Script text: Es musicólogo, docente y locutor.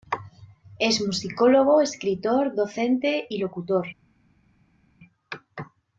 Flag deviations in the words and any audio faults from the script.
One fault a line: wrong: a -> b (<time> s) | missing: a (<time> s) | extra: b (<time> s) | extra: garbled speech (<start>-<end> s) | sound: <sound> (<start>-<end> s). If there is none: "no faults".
extra: escritor (1.8 s)